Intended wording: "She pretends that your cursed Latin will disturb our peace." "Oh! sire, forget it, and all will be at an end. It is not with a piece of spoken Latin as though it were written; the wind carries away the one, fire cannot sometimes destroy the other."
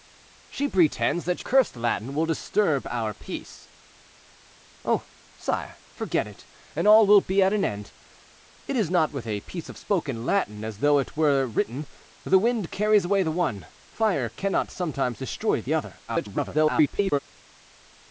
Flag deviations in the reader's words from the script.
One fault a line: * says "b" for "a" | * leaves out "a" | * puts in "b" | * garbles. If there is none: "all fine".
* leaves out "your"
* garbles